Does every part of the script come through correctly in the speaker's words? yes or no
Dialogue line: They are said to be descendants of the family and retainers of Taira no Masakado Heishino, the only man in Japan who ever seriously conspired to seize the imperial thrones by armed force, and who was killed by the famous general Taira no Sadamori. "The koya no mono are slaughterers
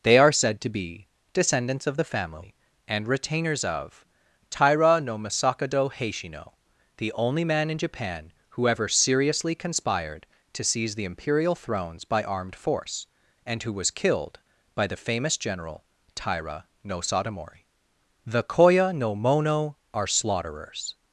yes